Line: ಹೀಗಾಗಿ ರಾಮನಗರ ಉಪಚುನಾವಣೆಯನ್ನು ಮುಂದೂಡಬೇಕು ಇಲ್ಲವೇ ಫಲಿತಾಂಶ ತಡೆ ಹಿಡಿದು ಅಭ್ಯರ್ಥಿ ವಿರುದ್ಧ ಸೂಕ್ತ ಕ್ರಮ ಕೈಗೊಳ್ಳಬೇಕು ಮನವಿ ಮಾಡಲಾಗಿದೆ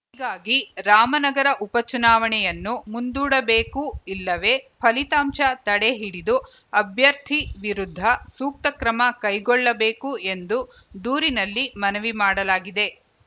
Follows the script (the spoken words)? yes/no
no